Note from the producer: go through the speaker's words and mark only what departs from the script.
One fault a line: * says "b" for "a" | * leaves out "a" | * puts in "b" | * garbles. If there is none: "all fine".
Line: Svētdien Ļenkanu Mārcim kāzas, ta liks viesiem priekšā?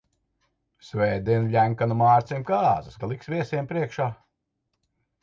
all fine